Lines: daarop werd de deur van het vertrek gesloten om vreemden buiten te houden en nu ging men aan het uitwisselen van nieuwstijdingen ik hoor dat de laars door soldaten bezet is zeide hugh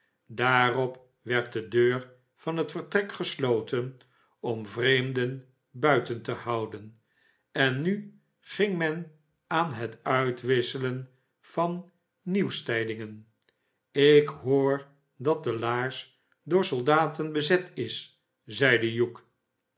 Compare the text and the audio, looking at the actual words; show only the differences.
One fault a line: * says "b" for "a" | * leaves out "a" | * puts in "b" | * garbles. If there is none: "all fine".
all fine